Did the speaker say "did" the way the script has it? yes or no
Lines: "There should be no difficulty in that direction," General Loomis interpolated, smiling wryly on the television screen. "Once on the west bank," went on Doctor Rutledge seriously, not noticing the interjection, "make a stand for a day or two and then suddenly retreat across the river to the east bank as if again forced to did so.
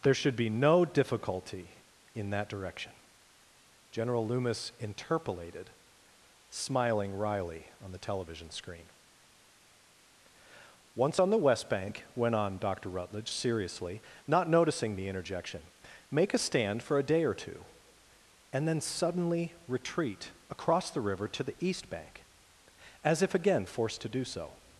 no